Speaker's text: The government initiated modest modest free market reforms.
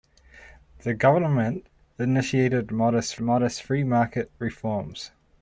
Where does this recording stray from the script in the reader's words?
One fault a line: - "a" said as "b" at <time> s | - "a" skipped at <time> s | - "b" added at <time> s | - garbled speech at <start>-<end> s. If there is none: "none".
none